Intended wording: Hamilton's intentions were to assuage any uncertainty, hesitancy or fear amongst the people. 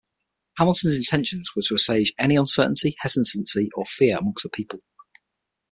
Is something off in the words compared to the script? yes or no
no